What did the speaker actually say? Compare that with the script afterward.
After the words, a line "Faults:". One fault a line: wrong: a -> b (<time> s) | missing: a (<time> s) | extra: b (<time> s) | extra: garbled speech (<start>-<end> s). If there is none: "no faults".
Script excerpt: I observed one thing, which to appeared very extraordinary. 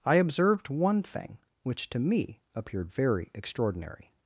I observed one thing, which to me appeared very extraordinary.
Faults:
extra: me (2.0 s)